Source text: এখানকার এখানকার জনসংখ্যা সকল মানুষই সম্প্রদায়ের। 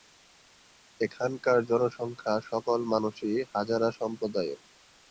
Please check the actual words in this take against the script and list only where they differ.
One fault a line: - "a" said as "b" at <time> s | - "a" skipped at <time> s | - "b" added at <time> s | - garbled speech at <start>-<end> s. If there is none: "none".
- "এখানকার" skipped at 1.6 s
- "হাজারা" added at 3.5 s